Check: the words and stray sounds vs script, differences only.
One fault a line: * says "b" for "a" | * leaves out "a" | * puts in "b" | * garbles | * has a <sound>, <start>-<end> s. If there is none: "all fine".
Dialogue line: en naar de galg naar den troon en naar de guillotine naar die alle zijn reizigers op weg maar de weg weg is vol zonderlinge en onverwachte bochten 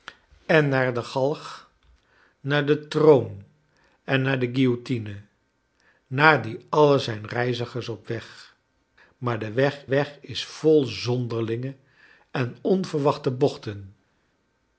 all fine